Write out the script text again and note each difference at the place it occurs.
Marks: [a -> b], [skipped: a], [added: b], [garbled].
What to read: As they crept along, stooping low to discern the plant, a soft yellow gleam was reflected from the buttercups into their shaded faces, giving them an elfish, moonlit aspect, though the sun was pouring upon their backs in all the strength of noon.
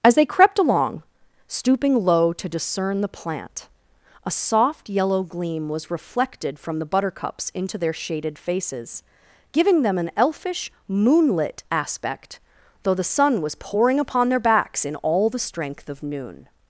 As they crept along, stooping low to discern the plant, a soft yellow gleam was reflected from the buttercups into their shaded faces, giving them an elfish, moonlit aspect, though the sun was pouring upon their backs in all the strength of noon.